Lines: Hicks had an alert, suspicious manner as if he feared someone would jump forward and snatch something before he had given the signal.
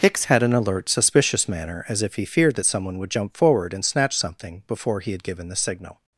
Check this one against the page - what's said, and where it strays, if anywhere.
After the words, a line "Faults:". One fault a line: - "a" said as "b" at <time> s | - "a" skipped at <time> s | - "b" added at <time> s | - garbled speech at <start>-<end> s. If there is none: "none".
Hicks had an alert, suspicious manner as if he feared that someone would jump forward and snatch something before he had given the signal.
Faults:
- "that" added at 2.5 s